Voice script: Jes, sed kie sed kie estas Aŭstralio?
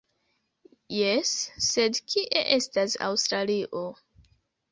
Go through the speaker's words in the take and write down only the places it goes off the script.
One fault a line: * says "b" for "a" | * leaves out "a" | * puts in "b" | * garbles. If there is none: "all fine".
* leaves out "sed kie"